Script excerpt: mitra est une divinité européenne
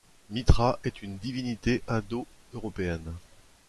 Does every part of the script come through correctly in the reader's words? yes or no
no